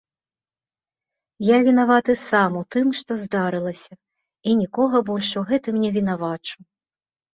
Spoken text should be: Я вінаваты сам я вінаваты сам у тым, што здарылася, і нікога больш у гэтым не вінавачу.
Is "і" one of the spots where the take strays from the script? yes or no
no